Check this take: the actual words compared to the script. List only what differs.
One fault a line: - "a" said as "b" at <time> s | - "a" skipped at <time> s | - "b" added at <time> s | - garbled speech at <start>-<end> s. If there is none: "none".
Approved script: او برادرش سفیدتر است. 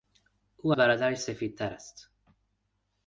none